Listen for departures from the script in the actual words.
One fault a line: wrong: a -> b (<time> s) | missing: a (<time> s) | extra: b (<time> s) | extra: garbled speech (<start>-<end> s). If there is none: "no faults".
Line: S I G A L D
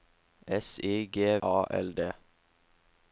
no faults